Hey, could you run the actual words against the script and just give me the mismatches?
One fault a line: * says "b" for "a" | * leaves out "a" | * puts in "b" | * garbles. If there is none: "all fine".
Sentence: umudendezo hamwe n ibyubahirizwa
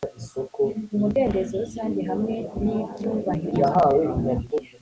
* puts in "rusange"